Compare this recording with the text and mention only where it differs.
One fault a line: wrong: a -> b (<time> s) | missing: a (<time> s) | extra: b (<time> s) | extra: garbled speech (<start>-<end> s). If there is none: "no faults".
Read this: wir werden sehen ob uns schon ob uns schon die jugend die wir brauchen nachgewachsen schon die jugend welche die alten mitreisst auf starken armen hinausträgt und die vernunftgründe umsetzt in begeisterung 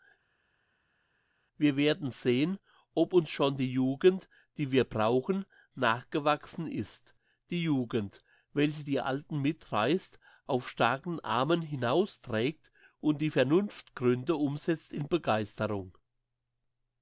missing: ob uns schon (3.6 s)
wrong: schon -> ist (6.7 s)